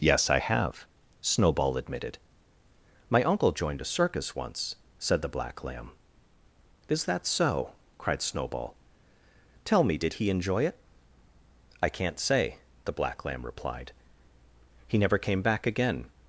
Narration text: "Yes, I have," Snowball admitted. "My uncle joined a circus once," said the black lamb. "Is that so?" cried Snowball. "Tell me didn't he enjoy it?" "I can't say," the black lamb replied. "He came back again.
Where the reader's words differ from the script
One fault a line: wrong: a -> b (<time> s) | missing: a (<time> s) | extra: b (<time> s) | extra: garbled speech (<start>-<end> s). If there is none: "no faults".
wrong: didn't -> did (10.0 s)
extra: never (15.0 s)